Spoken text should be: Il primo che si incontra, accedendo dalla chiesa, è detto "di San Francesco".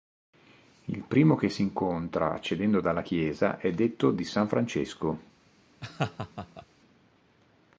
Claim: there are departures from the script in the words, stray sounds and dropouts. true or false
true